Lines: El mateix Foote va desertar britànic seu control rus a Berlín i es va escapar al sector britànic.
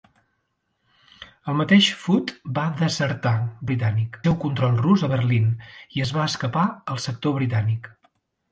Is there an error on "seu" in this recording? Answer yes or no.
no